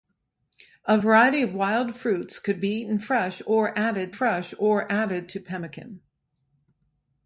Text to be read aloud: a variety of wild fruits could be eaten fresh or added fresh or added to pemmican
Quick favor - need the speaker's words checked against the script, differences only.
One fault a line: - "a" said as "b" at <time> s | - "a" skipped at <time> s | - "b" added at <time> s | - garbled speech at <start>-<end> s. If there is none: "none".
none